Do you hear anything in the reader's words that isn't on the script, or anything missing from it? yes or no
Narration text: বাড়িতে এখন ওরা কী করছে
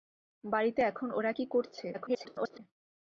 yes